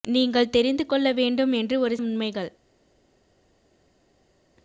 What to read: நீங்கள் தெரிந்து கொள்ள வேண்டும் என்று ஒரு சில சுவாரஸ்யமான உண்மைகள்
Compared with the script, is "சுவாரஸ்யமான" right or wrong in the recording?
wrong